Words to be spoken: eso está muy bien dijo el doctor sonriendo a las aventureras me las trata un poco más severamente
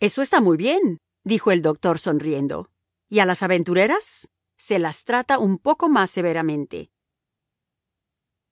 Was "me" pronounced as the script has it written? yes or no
no